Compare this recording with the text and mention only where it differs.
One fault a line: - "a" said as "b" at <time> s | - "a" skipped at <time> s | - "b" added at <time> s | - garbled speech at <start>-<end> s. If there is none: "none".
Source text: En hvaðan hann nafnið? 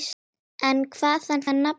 none